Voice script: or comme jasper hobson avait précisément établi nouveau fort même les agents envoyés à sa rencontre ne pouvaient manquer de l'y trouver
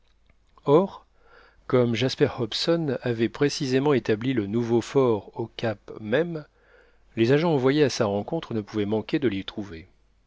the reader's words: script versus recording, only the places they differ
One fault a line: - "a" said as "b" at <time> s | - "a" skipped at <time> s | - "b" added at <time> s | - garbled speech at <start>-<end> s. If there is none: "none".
- "le" added at 4.3 s
- "au cap" added at 5.4 s